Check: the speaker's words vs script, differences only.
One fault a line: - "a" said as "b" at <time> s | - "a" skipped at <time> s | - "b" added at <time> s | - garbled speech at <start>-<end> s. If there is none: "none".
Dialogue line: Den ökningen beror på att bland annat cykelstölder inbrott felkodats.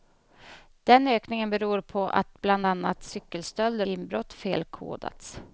none